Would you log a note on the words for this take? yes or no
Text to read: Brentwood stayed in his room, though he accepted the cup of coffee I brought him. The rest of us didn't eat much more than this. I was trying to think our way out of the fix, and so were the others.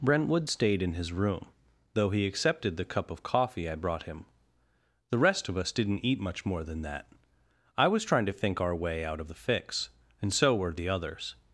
yes